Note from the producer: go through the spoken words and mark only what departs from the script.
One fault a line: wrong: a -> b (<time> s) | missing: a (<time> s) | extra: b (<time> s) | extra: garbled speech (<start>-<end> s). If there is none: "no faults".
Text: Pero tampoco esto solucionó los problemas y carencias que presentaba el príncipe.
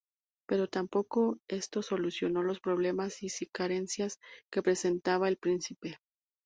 no faults